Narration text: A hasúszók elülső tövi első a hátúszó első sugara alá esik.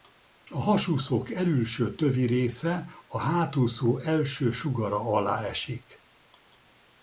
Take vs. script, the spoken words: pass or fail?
fail